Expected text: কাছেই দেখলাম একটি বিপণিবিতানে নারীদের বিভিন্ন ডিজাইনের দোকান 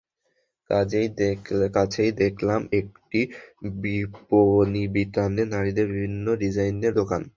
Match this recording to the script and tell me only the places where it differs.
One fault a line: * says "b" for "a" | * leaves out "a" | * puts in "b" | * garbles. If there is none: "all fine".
all fine